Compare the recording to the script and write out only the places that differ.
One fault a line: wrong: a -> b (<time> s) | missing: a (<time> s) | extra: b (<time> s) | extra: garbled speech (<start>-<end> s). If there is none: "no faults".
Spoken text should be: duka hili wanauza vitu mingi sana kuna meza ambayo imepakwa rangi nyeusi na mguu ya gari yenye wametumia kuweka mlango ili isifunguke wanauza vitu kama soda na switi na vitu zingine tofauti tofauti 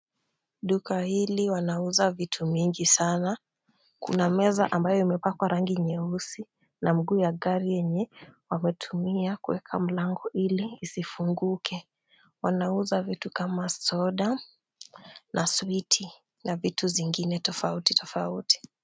no faults